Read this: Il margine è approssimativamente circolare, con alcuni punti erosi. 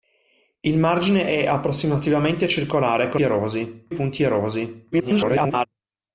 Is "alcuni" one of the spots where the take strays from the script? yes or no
yes